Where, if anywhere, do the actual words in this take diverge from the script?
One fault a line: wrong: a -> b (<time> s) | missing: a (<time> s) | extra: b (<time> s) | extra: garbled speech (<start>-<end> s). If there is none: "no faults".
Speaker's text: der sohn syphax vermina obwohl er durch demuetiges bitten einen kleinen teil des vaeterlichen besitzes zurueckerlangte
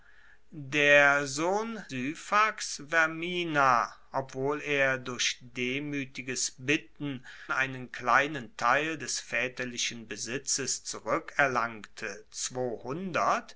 no faults